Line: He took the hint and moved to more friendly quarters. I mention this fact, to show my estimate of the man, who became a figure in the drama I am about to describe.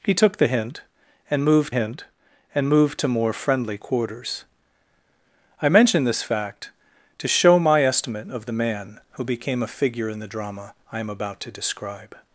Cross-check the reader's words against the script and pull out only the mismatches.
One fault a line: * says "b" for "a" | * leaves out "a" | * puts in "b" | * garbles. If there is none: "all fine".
* puts in "hint and moved"